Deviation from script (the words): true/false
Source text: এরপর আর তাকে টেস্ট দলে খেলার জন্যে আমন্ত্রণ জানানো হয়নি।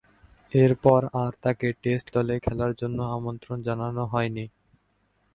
false